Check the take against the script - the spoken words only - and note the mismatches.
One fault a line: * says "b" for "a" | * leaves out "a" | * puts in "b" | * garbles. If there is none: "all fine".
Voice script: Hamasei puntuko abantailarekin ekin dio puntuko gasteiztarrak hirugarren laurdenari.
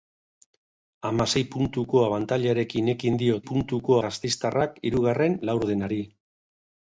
all fine